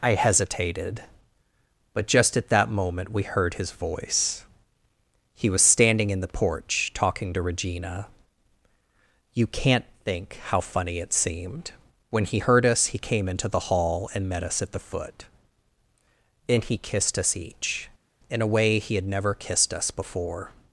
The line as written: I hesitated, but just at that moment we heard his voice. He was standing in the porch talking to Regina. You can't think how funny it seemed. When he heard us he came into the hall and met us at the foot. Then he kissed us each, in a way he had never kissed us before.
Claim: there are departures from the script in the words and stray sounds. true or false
false